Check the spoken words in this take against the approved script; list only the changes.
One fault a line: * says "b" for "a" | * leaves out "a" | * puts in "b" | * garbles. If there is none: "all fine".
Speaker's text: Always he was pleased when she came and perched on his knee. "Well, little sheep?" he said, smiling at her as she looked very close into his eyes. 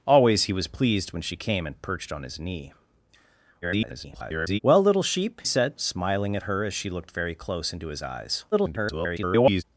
* garbles
* leaves out "he"
* garbles